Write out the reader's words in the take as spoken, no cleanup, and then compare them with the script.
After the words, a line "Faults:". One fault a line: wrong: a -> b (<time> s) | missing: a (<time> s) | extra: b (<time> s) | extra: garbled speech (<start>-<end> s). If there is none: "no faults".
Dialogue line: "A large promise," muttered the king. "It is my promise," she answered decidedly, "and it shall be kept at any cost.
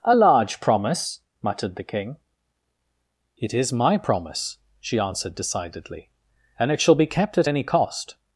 "A large promise," muttered the king. "It is my promise," she answered decidedly, "and it shall be kept at any cost.
Faults:
no faults